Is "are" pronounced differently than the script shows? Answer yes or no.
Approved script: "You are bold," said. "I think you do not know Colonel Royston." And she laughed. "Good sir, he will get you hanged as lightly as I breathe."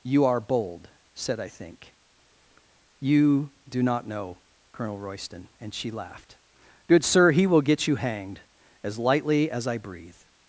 no